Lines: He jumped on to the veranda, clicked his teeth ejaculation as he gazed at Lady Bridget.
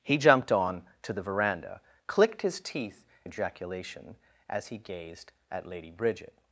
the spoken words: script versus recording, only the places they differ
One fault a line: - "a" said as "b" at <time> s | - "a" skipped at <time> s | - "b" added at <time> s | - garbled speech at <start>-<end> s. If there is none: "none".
none